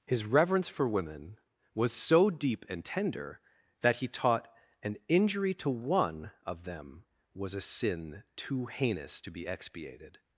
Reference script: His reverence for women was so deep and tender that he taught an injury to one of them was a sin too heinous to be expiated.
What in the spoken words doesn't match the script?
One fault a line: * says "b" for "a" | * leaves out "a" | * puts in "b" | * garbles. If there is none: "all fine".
all fine